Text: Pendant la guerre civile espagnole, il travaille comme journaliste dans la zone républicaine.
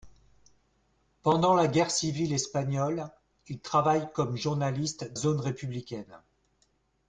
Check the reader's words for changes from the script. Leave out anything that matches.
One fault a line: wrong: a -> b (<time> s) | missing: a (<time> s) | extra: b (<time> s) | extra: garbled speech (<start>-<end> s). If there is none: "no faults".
missing: dans la (5.1 s)